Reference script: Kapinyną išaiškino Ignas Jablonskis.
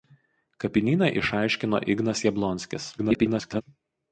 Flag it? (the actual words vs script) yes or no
yes